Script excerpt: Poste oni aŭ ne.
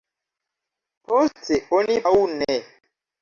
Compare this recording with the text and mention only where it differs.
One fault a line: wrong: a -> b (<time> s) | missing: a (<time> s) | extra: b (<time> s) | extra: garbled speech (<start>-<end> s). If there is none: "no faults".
no faults